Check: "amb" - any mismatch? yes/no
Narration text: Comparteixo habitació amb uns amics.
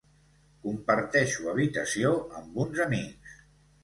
no